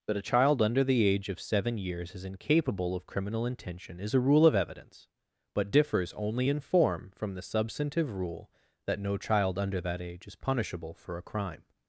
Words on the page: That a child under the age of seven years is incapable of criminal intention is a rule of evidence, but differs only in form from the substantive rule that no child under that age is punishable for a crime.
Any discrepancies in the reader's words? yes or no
no